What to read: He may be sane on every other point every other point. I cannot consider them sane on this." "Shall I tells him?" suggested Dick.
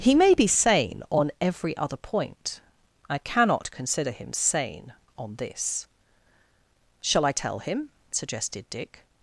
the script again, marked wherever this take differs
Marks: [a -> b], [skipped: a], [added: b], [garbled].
He may be sane on every other point [skipped: every other point.] I cannot consider [them -> him] sane on this." "Shall I [tells -> tell] him?" suggested Dick.